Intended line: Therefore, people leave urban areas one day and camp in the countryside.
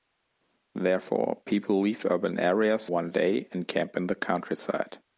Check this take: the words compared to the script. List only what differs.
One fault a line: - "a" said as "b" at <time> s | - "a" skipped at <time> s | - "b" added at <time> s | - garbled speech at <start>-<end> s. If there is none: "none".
none